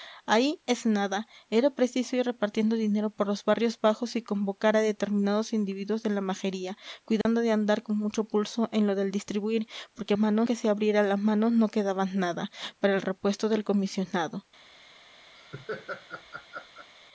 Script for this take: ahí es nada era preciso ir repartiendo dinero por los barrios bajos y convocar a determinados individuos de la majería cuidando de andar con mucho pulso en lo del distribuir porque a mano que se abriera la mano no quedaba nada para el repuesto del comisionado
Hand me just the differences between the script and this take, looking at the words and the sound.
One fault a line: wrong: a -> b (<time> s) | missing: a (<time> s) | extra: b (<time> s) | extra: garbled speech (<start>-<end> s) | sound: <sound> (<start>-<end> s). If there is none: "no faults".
sound: dropout (7.2-7.3 s)
sound: laugh (15.3-16.9 s)